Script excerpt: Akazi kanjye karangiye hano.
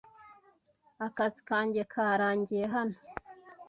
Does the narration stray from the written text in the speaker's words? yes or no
no